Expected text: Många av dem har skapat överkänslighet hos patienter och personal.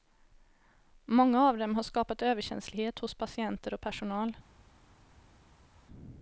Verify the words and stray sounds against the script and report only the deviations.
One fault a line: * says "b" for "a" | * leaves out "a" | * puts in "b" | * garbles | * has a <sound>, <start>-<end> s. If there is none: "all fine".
all fine